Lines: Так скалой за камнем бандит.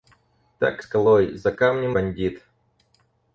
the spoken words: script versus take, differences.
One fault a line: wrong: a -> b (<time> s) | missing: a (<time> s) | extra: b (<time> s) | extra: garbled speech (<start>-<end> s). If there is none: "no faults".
no faults